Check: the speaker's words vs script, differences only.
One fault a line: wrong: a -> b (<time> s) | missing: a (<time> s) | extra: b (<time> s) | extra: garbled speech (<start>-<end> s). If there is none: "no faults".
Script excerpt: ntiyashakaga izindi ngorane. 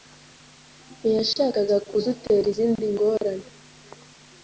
extra: kudutera (1.9 s)